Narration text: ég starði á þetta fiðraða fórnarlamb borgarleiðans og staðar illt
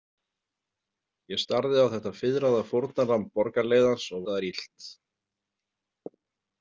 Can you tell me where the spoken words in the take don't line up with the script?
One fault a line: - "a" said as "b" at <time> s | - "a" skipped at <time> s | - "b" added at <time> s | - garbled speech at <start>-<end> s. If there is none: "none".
none